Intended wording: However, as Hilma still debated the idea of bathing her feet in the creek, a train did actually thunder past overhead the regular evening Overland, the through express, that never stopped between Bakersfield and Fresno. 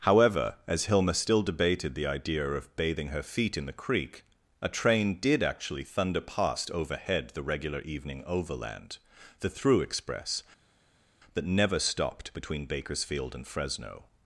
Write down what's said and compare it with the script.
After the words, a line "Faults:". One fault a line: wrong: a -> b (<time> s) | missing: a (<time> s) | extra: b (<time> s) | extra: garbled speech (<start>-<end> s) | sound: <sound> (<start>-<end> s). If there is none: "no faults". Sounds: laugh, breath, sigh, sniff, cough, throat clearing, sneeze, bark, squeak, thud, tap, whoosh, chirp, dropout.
However, as Hilma still debated the idea of bathing her feet in the creek, a train did actually thunder past overhead the regular evening Overland, the through express, that never stopped between Bakersfield and Fresno.
Faults:
no faults